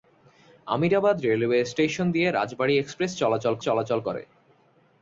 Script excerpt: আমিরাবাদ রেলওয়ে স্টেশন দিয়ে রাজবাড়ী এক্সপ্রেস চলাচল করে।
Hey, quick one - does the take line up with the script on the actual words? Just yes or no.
no